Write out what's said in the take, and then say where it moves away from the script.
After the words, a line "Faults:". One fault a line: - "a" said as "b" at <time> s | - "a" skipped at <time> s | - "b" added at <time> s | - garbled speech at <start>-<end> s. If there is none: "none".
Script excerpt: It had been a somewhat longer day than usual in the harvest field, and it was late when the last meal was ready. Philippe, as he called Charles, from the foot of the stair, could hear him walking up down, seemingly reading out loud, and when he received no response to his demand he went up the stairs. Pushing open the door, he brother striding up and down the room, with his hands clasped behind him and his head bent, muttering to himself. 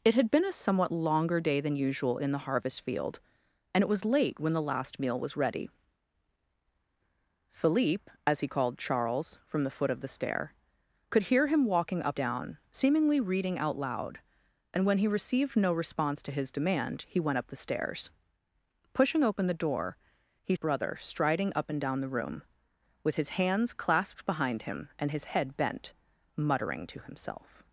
It had been a somewhat longer day than usual in the harvest field, and it was late when the last meal was ready. Philippe, as he called Charles, from the foot of the stair, could hear him walking up down, seemingly reading out loud, and when he received no response to his demand he went up the stairs. Pushing open the door, he brother striding up and down the room, with his hands clasped behind him and his head bent, muttering to himself.
Faults:
none